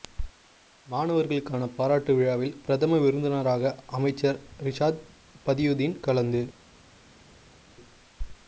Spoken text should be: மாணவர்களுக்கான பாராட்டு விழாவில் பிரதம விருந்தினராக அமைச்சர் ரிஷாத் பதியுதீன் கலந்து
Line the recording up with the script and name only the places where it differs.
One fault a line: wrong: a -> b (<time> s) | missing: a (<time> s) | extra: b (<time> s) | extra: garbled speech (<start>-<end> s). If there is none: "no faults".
no faults